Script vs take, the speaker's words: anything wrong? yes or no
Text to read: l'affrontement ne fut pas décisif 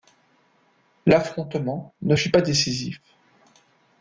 no